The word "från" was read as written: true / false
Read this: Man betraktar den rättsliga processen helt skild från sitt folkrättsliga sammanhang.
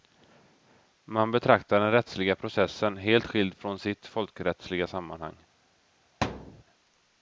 true